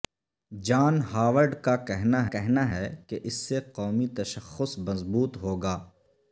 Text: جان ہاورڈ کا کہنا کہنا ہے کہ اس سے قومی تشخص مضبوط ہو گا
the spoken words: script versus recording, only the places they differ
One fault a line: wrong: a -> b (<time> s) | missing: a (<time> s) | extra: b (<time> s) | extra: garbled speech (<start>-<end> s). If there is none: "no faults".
no faults